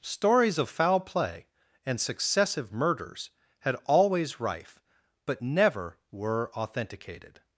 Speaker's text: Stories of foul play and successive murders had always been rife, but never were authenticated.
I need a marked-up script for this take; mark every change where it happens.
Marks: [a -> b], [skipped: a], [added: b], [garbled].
Stories of foul play and successive murders had always [skipped: been] rife, but never were authenticated.